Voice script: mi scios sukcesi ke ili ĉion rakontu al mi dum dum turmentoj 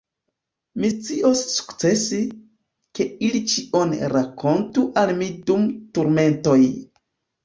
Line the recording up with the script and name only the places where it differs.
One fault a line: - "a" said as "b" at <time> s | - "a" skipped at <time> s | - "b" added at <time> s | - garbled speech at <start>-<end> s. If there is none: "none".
- "dum" skipped at 5.7 s